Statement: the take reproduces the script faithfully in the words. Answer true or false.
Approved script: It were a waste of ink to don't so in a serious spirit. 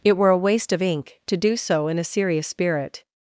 false